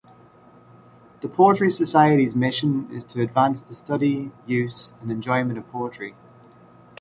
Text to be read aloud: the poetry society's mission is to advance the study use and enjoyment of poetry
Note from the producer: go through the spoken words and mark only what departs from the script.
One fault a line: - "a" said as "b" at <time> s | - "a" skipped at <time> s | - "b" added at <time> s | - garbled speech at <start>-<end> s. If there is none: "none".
none